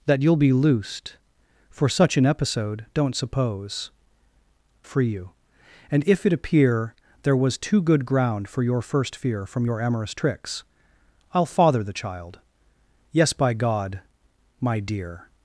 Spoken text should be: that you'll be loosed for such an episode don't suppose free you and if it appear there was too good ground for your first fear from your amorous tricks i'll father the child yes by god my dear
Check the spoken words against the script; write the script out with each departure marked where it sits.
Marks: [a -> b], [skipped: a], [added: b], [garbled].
that you'll be loosed for such an episode don't suppose free you and if it appear there was too good ground for your first fear from your amorous tricks i'll father the child yes by god my dear